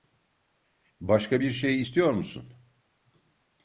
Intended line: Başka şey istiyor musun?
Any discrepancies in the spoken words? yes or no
yes